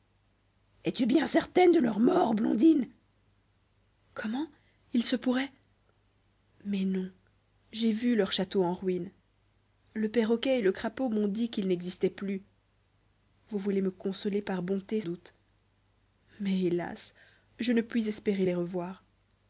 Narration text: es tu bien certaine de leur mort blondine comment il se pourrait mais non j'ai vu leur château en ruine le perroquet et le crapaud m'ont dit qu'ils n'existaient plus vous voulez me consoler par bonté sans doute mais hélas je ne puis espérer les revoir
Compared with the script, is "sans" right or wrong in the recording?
wrong